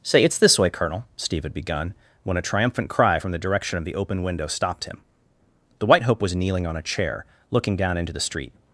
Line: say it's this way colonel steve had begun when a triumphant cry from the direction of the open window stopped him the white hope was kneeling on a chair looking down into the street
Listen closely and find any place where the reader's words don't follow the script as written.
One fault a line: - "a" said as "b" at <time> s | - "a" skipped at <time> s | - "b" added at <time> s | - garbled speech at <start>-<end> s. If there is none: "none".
none